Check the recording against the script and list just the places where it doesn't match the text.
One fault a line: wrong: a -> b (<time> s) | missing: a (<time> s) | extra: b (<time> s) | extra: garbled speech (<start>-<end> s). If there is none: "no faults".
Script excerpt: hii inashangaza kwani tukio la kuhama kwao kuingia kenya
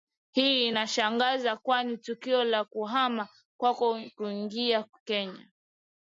no faults